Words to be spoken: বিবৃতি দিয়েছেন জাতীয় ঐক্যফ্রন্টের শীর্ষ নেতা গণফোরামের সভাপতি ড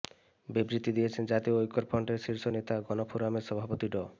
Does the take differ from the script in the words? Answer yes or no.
no